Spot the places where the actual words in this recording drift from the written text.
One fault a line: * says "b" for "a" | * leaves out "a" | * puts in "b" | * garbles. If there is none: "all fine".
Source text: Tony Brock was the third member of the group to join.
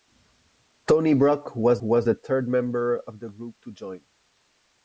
* puts in "was"